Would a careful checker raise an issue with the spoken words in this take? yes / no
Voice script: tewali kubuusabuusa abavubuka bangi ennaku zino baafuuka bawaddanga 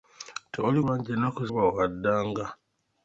yes